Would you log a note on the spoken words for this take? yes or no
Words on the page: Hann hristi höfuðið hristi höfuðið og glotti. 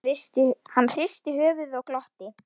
yes